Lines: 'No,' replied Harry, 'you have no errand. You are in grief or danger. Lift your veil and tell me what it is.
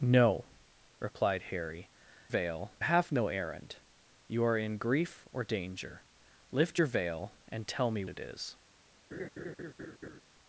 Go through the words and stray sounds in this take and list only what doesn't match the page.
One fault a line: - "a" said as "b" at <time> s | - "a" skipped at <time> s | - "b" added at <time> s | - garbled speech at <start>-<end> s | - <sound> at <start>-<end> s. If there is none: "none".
- "you" said as "veil" at 2.3 s
- "what" skipped at 8.0 s
- laugh at 9.1-10.2 s